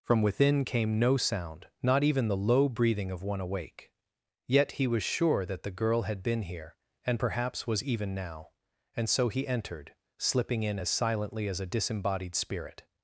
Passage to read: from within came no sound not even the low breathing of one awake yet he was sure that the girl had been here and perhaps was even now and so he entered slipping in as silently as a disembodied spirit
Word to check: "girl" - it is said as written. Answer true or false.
true